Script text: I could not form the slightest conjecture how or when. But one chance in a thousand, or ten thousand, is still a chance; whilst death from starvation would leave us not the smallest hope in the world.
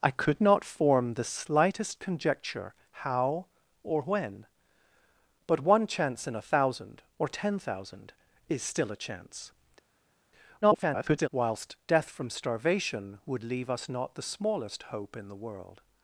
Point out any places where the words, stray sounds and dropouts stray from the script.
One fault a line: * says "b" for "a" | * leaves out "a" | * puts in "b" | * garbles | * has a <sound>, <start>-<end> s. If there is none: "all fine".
* garbles